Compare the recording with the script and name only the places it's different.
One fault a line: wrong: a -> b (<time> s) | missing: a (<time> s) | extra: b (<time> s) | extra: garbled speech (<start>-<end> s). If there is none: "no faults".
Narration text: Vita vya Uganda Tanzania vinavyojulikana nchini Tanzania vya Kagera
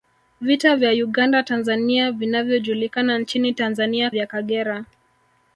no faults